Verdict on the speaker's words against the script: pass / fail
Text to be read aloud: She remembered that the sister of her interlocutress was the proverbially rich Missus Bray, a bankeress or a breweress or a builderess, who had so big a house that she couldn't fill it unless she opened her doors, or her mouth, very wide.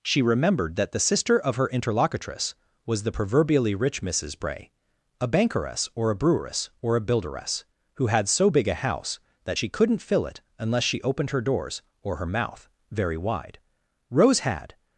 fail